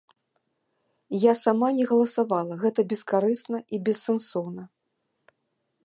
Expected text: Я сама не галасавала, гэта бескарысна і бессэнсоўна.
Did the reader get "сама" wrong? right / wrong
right